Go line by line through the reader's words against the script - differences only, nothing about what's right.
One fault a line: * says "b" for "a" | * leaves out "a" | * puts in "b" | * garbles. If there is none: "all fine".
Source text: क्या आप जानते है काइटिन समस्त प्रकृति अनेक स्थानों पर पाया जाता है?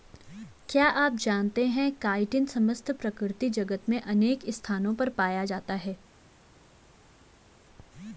* puts in "जगत में"